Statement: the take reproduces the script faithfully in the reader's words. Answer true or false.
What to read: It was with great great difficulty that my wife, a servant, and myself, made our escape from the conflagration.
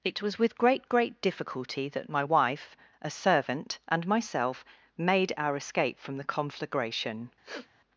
true